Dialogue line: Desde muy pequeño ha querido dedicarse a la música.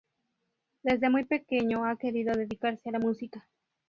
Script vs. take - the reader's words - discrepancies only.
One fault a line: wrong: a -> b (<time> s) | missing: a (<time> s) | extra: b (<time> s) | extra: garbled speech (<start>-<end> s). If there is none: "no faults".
no faults